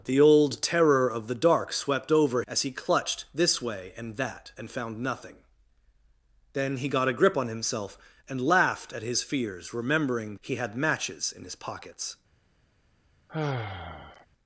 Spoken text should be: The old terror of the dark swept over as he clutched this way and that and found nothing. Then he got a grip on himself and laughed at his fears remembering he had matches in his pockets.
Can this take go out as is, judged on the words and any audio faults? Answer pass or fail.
fail